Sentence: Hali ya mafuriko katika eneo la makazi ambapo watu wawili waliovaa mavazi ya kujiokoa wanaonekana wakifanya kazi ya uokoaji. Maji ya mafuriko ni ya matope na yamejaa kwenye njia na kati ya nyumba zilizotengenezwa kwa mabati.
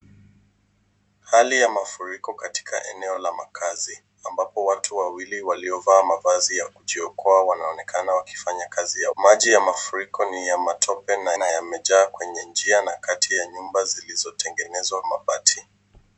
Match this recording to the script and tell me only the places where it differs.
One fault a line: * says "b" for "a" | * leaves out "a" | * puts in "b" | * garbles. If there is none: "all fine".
* leaves out "uokoaji"
* puts in "na"
* leaves out "kwa"